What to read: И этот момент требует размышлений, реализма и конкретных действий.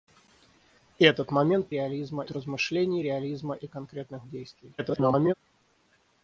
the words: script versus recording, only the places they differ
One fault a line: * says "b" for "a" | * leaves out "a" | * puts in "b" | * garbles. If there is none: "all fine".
* says "реализма" for "требует"
* garbles